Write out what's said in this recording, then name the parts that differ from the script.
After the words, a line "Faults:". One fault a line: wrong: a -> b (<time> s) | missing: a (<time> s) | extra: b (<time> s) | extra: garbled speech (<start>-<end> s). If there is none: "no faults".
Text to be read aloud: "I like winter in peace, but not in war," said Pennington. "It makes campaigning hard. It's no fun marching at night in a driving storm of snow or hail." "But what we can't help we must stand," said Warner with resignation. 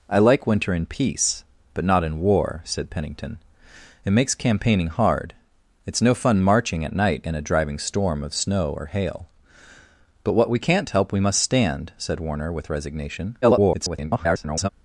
"I like winter in peace, but not in war," said Pennington. "It makes campaigning hard. It's no fun marching at night in a driving storm of snow or hail." "But what we can't help we must stand," said Warner with resignation. [garbled]
Faults:
extra: garbled speech (13.4-14.7 s)